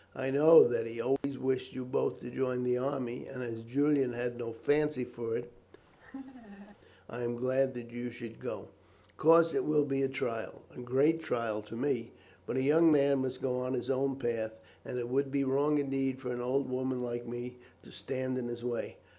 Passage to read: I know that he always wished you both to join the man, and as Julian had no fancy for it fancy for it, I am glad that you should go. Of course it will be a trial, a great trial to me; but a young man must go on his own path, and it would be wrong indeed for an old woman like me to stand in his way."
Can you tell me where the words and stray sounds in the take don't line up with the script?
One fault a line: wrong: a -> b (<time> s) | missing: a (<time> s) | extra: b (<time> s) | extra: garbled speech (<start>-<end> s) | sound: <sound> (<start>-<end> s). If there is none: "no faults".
sound: dropout (1.2-1.2 s)
wrong: man -> army (2.8 s)
missing: fancy for it (5.5 s)
sound: laugh (5.9-6.8 s)